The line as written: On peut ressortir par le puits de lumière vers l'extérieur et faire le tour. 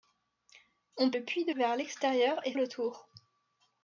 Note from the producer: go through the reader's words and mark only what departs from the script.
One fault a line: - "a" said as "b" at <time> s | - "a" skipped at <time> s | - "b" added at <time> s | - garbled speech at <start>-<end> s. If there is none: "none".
- "peut ressortir par" skipped at 1.1 s
- "lumière" skipped at 1.5 s
- "faire" skipped at 2.5 s